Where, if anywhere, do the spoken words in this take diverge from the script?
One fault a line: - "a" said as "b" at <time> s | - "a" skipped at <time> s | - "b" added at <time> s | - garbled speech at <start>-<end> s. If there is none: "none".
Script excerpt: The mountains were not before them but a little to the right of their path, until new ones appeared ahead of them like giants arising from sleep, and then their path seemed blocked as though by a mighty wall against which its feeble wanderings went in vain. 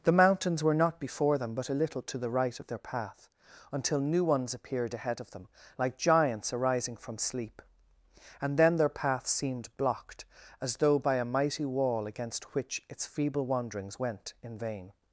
none